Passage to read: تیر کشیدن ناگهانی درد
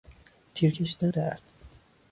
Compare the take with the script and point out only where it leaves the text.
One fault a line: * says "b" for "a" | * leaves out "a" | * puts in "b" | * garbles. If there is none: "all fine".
* leaves out "ناگهانی"